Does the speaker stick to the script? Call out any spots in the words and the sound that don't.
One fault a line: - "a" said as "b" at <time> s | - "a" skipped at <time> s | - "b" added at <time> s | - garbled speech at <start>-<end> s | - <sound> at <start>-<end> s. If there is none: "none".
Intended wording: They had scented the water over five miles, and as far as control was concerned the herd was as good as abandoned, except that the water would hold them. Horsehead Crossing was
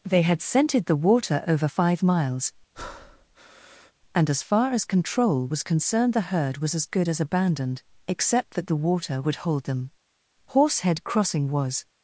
- breath at 2.7-3.9 s